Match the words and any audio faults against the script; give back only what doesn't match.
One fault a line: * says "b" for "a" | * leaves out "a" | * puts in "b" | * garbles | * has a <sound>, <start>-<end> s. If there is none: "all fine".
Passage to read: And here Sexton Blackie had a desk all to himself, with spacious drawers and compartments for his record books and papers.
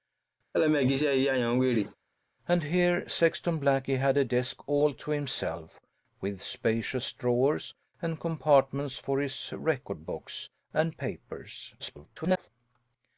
* has a laugh, 0.5-2.0 s
* garbles